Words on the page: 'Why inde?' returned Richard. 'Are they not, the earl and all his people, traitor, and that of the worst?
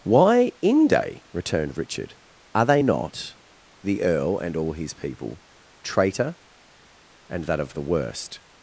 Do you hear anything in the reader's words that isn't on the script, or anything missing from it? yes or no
no